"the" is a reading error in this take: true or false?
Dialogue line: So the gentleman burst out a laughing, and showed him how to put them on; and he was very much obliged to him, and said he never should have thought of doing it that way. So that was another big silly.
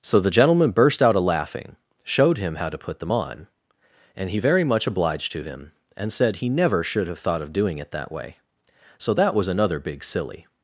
false